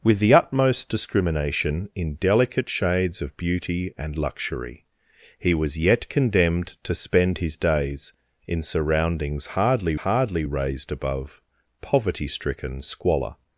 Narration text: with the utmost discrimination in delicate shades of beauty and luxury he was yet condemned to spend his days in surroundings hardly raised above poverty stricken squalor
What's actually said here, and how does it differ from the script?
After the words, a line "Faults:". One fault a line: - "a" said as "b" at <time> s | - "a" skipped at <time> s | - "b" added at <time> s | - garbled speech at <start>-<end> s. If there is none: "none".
with the utmost discrimination in delicate shades of beauty and luxury he was yet condemned to spend his days in surroundings hardly hardly raised above poverty stricken squalor
Faults:
- "hardly" added at 10.0 s